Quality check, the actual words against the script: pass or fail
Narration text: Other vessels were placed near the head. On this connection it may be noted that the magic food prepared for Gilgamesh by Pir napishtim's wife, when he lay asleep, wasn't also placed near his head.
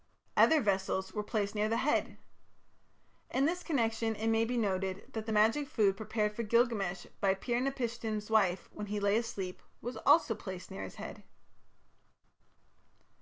fail